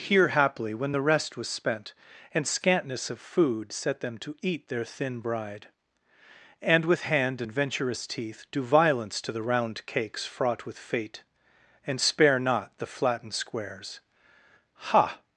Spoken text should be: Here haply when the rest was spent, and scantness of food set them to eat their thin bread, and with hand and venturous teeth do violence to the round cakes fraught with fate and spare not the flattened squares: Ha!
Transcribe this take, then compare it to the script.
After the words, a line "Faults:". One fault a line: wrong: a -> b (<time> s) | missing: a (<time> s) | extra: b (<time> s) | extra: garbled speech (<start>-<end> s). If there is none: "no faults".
Here haply when the rest was spent, and scantness of food set them to eat their thin bride, and with hand and venturous teeth do violence to the round cakes fraught with fate and spare not the flattened squares: Ha!
Faults:
wrong: bread -> bride (5.2 s)